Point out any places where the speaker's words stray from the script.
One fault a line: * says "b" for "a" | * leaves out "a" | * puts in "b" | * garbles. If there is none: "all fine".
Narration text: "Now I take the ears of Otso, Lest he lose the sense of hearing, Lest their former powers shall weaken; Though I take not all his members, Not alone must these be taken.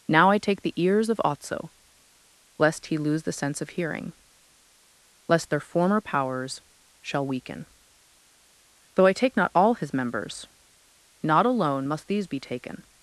all fine